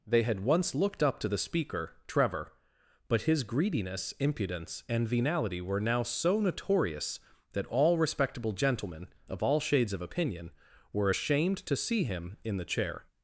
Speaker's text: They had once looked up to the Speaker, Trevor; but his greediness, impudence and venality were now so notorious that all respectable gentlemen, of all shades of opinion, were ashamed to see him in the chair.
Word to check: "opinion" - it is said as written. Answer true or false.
true